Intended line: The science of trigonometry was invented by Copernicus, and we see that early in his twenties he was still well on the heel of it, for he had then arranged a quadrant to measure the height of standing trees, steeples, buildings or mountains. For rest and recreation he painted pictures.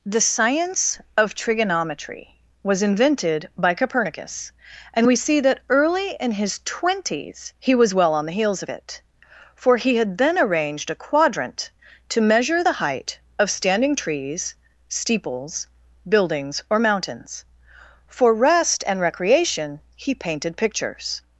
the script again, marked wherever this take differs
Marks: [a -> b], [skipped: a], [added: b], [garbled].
The science of trigonometry was invented by Copernicus, and we see that early in his twenties he was [skipped: still] well on the [heel -> heels] of it, for he had then arranged a quadrant to measure the height of standing trees, steeples, buildings or mountains. For rest and recreation he painted pictures.